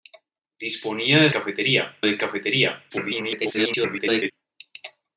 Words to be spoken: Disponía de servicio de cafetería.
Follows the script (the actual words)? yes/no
no